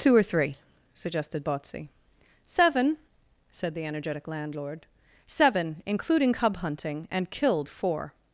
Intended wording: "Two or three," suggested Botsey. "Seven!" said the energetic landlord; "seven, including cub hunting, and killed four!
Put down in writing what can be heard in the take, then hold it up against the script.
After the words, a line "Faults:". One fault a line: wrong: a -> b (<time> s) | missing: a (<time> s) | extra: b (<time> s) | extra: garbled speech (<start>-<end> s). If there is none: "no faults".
"Two or three," suggested Botsey. "Seven!" said the energetic landlord; "seven, including cub hunting, and killed four!
Faults:
no faults